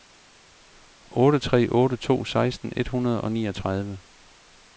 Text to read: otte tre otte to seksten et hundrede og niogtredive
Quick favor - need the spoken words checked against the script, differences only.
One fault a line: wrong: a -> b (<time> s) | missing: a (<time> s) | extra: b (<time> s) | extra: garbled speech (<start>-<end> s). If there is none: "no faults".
no faults